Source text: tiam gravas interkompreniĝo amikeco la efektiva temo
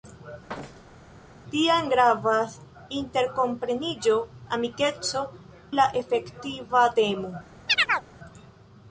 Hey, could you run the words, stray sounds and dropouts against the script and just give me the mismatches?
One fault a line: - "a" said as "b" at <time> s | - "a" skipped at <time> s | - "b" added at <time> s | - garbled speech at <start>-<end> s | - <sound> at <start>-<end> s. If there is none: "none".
- thud at 0.5-1.1 s
- chirp at 7.7-8.1 s